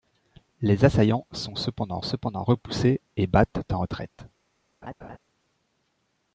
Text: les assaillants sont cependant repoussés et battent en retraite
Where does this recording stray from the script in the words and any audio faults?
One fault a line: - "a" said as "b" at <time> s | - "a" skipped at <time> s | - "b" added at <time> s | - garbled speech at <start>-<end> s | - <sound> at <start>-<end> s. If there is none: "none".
- "cependant" added at 2.0 s
- laugh at 4.8-5.2 s